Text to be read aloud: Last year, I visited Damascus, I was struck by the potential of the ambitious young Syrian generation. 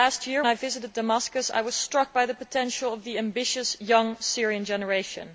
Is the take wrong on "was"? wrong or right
right